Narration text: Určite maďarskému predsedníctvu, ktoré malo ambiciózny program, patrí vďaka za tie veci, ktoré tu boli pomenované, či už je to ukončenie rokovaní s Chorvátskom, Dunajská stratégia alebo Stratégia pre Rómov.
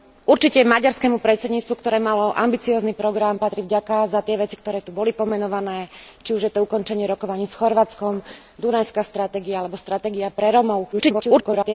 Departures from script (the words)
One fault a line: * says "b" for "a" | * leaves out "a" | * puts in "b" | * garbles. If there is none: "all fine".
* garbles